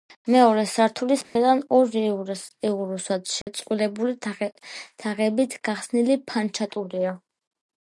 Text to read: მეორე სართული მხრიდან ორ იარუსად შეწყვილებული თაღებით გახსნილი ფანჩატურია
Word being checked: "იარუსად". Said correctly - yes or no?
yes